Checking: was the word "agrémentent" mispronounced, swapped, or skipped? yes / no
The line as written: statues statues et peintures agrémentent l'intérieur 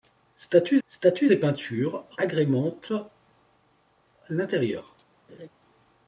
no